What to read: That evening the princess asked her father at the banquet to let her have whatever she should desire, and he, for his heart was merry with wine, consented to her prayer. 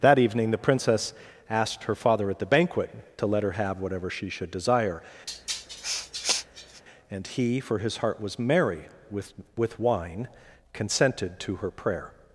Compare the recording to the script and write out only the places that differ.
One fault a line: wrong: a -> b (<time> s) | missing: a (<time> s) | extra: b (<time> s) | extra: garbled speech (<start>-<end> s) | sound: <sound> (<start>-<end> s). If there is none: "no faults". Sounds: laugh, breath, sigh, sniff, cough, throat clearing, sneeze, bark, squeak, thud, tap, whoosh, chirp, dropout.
sound: sniff (5.3-6.8 s)
extra: with (9.5 s)